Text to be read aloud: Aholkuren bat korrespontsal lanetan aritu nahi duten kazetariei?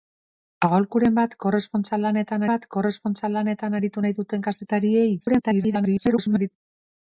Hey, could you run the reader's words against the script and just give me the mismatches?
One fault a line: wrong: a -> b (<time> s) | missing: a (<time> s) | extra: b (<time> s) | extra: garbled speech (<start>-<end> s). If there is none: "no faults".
extra: bat korrespontsal lanetan (2.5 s)
extra: garbled speech (5.2-6.5 s)